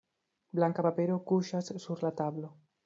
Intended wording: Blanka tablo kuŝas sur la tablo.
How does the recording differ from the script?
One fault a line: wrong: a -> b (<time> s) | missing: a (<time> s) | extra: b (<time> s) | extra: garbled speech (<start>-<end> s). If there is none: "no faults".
wrong: tablo -> papero (0.9 s)